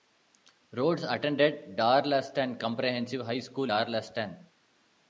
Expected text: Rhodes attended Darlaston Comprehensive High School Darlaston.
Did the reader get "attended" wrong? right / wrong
right